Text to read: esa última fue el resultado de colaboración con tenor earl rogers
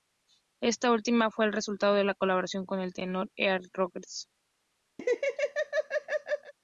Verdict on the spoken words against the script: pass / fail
fail